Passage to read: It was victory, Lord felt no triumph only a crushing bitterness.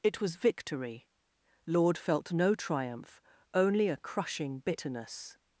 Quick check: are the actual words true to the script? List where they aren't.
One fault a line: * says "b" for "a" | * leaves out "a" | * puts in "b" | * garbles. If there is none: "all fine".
all fine